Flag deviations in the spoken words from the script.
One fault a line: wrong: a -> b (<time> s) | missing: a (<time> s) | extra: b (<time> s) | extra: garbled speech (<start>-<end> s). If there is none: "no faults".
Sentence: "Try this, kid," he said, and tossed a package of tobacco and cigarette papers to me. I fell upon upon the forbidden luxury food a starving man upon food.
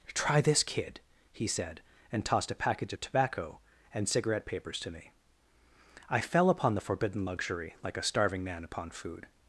missing: upon (6.7 s)
wrong: food -> like (7.8 s)